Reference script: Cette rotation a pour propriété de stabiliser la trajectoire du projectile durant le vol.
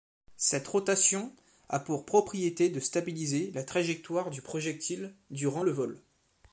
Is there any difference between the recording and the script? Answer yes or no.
no